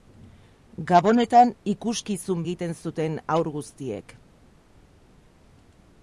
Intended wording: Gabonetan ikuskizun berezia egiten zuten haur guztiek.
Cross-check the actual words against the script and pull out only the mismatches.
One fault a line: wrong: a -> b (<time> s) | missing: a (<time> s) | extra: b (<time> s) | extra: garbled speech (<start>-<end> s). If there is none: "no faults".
missing: berezia (2.4 s)